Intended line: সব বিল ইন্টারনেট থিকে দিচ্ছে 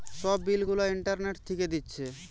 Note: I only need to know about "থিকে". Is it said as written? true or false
true